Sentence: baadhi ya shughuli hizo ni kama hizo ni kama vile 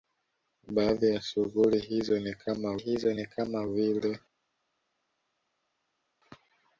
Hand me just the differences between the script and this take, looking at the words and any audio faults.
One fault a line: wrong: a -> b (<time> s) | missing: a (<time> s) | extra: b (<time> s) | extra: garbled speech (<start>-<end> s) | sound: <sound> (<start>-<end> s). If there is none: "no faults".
no faults